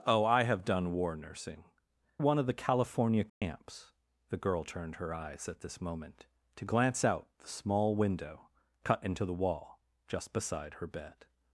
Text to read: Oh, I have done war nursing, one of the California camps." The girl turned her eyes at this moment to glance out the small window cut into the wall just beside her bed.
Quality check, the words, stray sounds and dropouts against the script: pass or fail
fail